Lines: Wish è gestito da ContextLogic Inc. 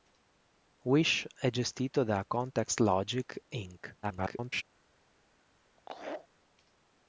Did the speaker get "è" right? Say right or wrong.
right